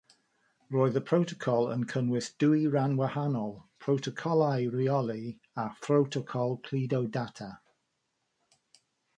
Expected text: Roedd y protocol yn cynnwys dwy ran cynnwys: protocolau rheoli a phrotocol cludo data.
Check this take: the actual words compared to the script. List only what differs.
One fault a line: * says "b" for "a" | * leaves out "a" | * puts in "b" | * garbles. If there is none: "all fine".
* says "wahanol" for "cynnwys"